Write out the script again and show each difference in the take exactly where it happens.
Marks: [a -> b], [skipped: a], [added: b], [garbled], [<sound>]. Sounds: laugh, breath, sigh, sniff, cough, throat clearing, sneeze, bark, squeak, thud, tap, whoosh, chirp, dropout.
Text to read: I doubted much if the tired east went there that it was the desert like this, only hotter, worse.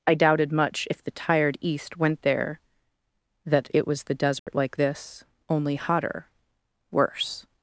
I doubted much if the tired east went there that it was the desert [dropout] like this, only hotter, worse.